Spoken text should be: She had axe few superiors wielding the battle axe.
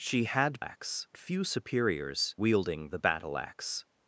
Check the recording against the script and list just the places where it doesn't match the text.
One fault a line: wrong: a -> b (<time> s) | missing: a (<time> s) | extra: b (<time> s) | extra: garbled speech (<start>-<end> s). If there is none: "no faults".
no faults